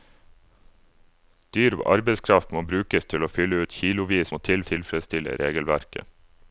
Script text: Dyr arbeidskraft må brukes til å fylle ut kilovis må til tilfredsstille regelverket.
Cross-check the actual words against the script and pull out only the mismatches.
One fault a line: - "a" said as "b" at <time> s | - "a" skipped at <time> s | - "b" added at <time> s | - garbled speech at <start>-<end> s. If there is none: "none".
none